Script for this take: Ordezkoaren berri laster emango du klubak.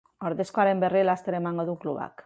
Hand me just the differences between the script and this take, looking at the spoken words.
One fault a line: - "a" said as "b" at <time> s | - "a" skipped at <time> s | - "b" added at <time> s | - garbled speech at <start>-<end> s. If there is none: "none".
none